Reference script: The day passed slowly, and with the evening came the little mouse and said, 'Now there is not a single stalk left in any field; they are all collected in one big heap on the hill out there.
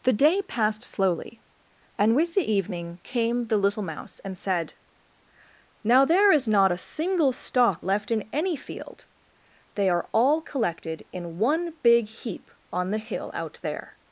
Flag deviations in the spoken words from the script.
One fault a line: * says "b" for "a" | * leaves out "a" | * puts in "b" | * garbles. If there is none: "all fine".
all fine